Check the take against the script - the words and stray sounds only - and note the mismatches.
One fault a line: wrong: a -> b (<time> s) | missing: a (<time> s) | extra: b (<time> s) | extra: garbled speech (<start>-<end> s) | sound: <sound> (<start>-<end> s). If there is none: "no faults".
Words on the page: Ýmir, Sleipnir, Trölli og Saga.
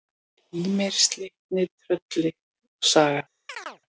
sound: chirp (3.5-3.8 s)